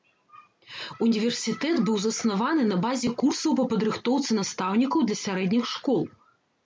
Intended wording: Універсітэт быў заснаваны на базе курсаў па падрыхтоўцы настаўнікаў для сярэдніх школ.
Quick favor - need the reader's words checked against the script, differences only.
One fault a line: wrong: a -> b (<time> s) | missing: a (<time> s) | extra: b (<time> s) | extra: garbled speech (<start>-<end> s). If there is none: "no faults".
no faults